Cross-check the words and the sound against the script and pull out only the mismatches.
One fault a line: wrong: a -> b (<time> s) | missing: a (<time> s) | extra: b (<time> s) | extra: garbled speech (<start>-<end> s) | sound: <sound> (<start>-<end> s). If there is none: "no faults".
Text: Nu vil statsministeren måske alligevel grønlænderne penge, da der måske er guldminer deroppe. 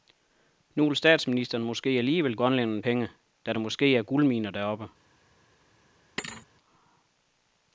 sound: thud (6.2-6.5 s)